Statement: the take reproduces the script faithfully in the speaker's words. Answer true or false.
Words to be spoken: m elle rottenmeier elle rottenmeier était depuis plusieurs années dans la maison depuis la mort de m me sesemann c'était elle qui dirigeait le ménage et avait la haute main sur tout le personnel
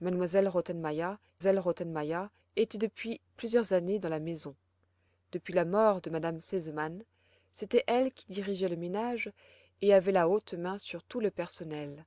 true